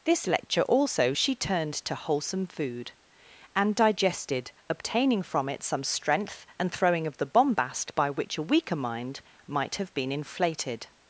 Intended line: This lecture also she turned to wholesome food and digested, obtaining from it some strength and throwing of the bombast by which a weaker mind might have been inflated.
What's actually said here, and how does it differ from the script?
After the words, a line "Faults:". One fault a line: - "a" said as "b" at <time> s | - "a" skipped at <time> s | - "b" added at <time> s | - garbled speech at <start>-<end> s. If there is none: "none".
This lecture also she turned to wholesome food and digested, obtaining from it some strength and throwing of the bombast by which a weaker mind might have been inflated.
Faults:
none